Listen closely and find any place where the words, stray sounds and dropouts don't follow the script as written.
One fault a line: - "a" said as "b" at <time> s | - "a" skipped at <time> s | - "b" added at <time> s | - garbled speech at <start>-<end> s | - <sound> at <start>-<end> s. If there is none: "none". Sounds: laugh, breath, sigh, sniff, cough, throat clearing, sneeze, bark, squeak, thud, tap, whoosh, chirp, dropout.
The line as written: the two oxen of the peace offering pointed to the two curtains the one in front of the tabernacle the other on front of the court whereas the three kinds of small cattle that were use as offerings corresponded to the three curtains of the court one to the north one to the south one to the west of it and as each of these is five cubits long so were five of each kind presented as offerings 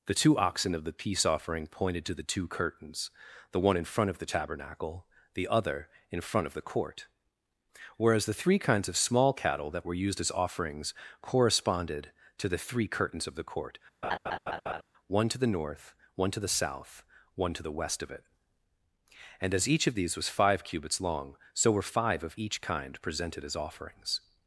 - "on" said as "in" at 6.1 s
- "use" said as "used" at 9.9 s
- laugh at 14.0-14.8 s
- "is" said as "was" at 20.2 s